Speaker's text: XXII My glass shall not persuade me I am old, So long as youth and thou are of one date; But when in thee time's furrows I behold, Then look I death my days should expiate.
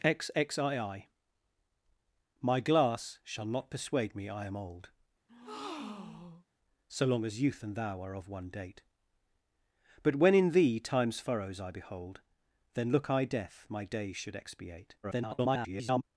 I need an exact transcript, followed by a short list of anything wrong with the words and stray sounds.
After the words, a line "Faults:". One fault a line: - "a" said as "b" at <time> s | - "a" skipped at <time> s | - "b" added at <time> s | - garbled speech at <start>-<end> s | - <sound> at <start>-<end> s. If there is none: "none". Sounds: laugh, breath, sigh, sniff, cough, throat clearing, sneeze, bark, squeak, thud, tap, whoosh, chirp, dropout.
XXII My glass shall not persuade me I am old, So long as youth and thou are of one date; But when in thee time's furrows I behold, Then look I death my days should expiate. [garbled]
Faults:
- breath at 5.3-6.5 s
- garbled speech at 15.0-16.0 s